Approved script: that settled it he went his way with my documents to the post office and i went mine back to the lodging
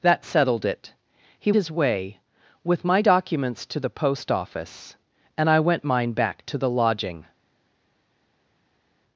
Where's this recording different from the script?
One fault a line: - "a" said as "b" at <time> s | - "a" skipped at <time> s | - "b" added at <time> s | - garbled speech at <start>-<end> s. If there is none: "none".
- "went" skipped at 1.5 s